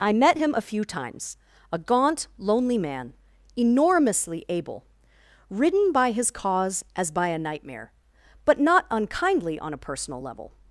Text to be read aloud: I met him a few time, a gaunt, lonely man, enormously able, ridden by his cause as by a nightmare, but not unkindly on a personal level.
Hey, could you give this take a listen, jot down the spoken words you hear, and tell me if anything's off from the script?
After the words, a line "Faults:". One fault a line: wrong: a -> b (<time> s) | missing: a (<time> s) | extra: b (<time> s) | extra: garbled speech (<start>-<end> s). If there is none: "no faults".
I met him a few times, a gaunt, lonely man, enormously able, ridden by his cause as by a nightmare, but not unkindly on a personal level.
Faults:
wrong: time -> times (0.8 s)